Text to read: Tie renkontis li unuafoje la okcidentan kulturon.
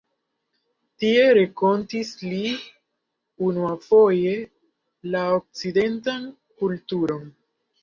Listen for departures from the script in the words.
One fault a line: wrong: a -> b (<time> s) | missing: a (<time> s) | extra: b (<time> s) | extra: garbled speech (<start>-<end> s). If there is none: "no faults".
no faults